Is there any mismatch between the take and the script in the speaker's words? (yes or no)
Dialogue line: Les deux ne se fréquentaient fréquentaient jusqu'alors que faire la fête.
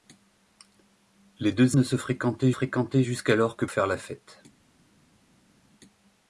no